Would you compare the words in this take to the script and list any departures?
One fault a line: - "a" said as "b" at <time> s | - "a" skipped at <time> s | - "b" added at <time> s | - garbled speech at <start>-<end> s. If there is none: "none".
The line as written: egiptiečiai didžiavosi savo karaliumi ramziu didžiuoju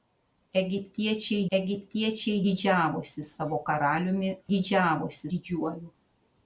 - "egiptiečiai" added at 1.6 s
- "ramziu" said as "didžiavosi" at 4.5 s